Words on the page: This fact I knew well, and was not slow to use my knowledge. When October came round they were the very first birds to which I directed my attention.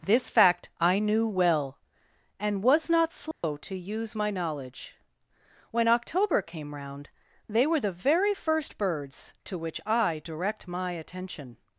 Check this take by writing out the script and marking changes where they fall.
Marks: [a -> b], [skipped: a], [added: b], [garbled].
This fact I knew well, and was not slow to use my knowledge. When October came round they were the very first birds to which I [directed -> direct] my attention.